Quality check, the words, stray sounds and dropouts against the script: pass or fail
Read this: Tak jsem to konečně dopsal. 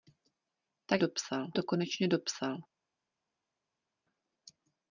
fail